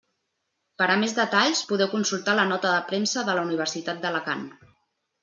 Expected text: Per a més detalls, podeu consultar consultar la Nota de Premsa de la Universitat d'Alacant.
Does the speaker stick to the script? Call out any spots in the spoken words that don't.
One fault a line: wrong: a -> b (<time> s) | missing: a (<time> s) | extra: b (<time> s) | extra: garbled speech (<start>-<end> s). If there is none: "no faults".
missing: consultar (2.4 s)